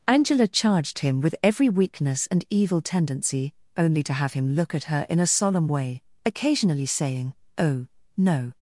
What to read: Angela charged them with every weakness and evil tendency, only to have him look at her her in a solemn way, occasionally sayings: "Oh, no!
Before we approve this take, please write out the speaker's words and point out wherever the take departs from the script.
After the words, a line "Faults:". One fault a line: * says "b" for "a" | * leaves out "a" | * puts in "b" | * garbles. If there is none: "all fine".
Angela charged him with every weakness and evil tendency, only to have him look at her in a solemn way, occasionally saying: "Oh, no!
Faults:
* says "him" for "them"
* leaves out "her"
* says "saying" for "sayings"